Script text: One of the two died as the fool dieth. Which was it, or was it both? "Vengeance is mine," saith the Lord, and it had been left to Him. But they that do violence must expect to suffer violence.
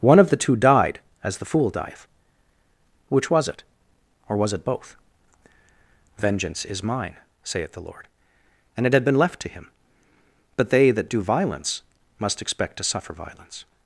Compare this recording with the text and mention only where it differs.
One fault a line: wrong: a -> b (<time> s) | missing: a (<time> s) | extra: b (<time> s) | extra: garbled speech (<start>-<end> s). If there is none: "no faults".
no faults